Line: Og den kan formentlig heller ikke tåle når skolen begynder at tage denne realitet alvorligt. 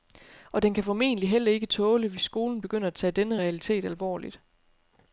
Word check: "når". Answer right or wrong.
wrong